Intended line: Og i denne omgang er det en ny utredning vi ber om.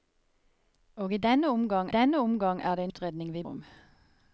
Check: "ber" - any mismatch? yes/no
yes